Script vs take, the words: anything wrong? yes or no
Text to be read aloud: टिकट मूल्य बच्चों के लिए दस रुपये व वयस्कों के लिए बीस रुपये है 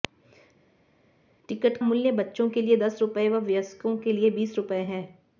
no